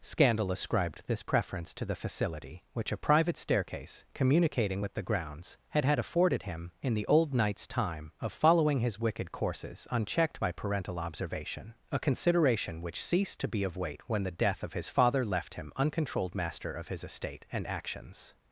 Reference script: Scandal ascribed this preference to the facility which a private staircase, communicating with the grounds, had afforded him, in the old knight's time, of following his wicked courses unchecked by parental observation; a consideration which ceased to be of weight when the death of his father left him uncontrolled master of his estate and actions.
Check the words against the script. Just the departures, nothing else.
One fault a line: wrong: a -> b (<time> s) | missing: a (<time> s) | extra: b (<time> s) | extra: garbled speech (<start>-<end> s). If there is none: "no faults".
extra: had (5.8 s)